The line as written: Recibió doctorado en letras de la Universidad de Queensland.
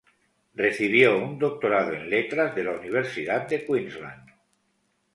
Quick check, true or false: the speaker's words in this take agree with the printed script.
false